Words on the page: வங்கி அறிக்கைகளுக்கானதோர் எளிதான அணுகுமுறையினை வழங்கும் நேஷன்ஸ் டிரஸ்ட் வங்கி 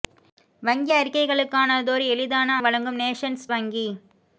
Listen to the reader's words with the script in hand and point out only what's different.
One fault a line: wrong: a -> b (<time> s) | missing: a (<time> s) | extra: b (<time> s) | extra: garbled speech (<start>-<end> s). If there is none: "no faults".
missing: அணுகுமுறையினை (2.6 s)
missing: டிரஸ்ட் (3.5 s)